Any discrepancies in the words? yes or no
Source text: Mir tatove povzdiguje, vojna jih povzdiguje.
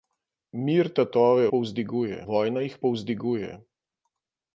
no